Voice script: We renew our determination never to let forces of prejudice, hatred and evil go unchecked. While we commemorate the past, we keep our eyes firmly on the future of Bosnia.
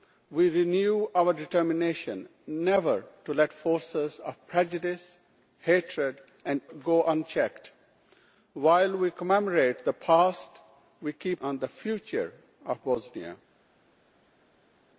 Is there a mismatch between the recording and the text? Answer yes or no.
yes